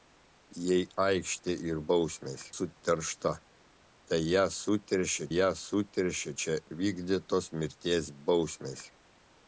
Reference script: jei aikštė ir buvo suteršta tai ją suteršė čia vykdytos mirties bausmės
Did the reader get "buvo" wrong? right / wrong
wrong